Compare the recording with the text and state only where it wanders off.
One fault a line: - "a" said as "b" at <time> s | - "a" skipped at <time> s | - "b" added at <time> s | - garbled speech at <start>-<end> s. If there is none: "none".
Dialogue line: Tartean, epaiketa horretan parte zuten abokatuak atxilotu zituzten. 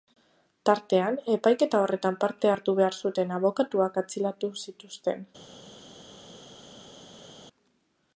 - "hartu behar" added at 2.5 s